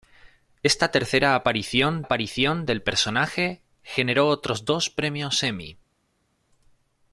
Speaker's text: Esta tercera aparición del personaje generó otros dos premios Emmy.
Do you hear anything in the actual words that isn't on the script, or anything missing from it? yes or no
yes